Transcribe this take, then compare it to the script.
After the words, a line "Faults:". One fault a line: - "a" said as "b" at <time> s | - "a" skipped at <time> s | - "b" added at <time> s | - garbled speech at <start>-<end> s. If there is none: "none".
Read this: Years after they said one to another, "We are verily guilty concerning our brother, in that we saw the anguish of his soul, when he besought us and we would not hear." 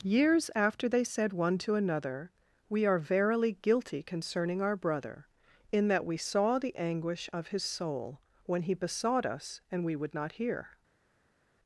Years after they said one to another, "We are verily guilty concerning our brother, in that we saw the anguish of his soul, when he besought us and we would not hear."
Faults:
none